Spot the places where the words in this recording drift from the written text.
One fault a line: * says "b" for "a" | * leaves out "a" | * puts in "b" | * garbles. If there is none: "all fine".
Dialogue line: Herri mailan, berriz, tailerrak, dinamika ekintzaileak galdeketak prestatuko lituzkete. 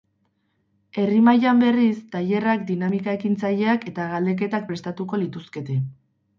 * puts in "eta"